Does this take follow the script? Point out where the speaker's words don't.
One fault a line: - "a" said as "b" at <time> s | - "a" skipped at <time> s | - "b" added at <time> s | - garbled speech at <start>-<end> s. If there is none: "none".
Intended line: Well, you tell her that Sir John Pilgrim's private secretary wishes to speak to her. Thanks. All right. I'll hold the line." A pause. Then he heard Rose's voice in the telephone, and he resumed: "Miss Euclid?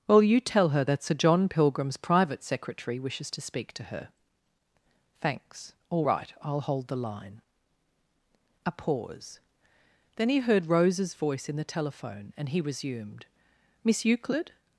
none